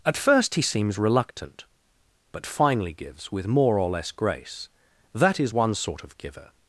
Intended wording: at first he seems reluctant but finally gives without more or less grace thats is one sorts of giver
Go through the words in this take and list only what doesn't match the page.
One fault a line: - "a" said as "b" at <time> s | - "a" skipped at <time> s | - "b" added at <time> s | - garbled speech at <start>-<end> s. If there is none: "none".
- "without" said as "with" at 3.3 s
- "thats" said as "that" at 5.1 s
- "sorts" said as "sort" at 5.7 s